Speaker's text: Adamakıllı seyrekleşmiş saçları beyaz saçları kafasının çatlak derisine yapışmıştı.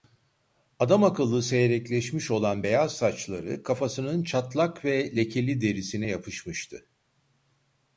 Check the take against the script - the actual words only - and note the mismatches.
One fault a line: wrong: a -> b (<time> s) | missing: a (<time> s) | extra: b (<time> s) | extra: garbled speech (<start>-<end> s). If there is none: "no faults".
wrong: saçları -> olan (2.3 s)
extra: ve lekeli (4.8 s)